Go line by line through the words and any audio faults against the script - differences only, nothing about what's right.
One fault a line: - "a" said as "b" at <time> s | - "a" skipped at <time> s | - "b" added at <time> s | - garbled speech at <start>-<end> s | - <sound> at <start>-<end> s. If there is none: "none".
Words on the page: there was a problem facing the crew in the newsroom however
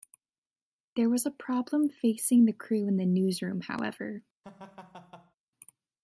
- laugh at 4.4-5.3 s